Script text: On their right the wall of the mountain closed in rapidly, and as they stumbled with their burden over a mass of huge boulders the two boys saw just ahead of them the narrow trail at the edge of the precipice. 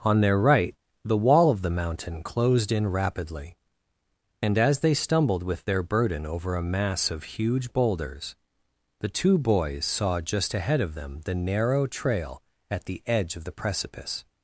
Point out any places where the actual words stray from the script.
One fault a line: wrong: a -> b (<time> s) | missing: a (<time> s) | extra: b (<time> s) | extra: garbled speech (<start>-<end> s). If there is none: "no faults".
no faults